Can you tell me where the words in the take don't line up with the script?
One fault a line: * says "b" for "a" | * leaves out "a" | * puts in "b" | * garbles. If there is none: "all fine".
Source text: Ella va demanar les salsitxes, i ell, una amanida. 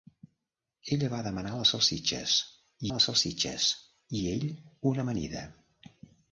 * puts in "les salsitxes"